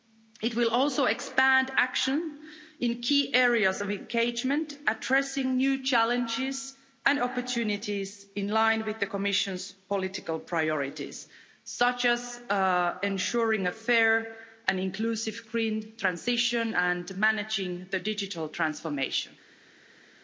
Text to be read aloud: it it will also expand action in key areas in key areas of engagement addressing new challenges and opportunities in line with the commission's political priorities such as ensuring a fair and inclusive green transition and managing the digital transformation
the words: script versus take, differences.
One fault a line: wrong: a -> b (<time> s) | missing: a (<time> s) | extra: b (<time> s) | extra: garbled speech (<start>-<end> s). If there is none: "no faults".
missing: it (0.6 s)
missing: in key areas (3.8 s)